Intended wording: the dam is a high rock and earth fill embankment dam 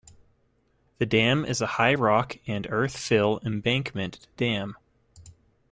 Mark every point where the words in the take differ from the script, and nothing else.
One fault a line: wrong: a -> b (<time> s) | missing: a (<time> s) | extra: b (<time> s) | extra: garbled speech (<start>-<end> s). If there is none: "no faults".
no faults